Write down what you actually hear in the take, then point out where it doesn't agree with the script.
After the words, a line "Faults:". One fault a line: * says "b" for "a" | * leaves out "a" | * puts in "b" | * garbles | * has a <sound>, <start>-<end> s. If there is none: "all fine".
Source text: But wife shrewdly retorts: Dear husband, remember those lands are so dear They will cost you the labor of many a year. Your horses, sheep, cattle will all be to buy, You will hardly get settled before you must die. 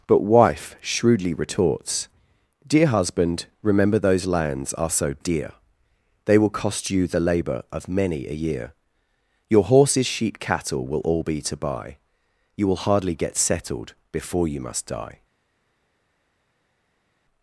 But wife shrewdly retorts: Dear husband, remember those lands are so dear They will cost you the labor of many a year. Your horses, sheep, cattle will all be to buy, You will hardly get settled before you must die.
Faults:
all fine